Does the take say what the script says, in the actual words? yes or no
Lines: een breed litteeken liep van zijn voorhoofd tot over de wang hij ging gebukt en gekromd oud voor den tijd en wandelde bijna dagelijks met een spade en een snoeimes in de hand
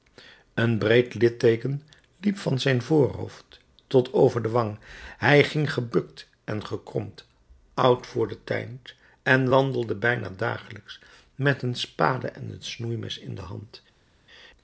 yes